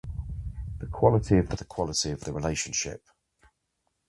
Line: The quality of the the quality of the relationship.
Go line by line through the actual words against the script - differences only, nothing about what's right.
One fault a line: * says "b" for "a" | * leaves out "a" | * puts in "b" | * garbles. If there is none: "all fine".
all fine